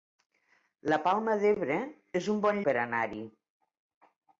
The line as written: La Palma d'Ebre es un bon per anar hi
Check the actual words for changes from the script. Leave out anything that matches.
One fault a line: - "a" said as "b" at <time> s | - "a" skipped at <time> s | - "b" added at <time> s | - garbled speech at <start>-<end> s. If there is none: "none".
none